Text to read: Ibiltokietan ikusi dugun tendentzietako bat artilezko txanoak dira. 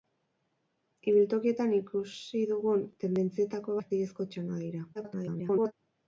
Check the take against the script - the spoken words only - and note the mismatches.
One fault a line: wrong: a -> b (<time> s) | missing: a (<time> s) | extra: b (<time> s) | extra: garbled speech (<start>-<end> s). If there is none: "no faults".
missing: bat (3.8 s)
extra: garbled speech (4.9-5.7 s)